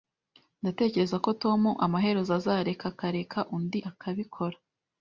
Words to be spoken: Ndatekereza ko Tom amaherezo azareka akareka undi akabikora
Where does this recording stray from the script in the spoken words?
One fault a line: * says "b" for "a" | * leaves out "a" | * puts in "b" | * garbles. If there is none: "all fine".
all fine